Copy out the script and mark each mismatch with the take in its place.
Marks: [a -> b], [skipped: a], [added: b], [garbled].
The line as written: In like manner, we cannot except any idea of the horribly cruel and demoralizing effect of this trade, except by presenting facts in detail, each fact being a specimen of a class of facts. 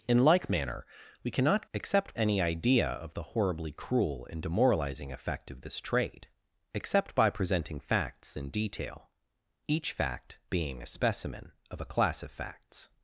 In like manner, we cannot except any idea of the horribly cruel and demoralizing effect of this trade, except by presenting facts in detail, each fact being a specimen of a class of facts.